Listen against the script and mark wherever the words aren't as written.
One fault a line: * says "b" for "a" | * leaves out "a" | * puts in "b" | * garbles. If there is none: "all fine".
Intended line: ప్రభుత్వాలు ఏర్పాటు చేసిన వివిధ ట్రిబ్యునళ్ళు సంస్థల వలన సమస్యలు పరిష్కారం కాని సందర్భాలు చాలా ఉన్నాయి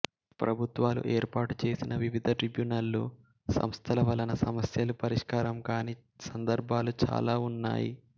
all fine